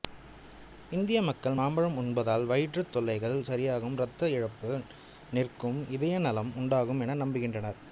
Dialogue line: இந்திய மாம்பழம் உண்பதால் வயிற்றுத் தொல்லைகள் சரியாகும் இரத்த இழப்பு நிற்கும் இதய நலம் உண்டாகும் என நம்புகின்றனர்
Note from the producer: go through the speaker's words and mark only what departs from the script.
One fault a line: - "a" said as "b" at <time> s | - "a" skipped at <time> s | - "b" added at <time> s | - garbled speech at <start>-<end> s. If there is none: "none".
- "மக்கள்" added at 1.2 s